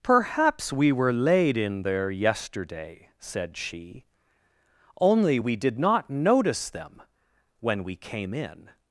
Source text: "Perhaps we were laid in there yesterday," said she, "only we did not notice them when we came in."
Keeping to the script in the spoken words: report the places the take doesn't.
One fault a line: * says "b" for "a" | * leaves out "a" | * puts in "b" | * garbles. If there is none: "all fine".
all fine